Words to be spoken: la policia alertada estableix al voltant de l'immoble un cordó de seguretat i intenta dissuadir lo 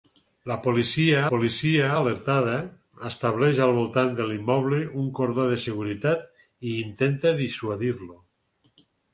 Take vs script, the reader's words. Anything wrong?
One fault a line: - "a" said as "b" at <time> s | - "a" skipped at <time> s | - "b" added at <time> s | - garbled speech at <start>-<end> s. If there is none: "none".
- "policia" added at 1.3 s